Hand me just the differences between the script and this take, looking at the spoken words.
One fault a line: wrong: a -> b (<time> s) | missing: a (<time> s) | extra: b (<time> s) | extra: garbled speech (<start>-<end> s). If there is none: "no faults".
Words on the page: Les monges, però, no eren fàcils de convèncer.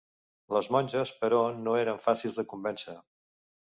no faults